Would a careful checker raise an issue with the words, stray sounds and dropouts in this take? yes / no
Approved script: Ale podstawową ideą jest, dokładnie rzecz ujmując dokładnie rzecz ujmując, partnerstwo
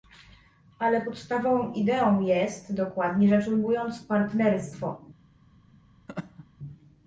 yes